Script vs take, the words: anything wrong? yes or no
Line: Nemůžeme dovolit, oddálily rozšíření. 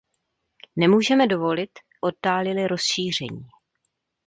no